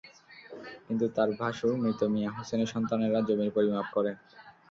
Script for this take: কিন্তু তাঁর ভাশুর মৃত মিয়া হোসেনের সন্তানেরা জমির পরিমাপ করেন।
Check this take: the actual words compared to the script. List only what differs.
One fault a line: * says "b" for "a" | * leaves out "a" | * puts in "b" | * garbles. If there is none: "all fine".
all fine